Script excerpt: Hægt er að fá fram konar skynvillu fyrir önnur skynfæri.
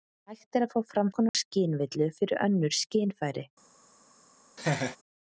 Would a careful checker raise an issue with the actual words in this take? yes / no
no